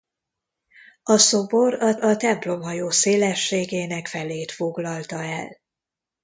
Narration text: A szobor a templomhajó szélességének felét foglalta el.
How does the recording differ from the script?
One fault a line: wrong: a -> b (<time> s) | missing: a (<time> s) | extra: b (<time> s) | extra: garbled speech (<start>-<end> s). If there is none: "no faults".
extra: a (1.9 s)